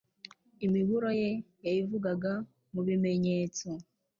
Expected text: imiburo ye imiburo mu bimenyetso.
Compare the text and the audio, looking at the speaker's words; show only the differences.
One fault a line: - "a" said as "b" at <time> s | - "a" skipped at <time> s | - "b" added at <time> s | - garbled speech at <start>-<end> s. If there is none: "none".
- "imiburo" said as "yayivugaga" at 1.6 s